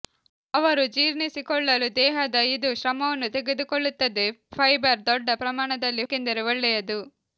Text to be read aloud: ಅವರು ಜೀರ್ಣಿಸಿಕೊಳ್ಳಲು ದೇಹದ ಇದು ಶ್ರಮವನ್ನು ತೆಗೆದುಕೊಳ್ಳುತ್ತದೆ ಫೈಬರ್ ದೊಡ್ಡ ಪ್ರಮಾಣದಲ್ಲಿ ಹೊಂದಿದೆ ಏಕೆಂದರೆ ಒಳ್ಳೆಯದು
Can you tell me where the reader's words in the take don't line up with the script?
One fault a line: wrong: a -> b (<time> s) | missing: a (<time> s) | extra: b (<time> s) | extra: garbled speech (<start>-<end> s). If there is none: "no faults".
missing: ಹೊಂದಿದೆ (6.0 s)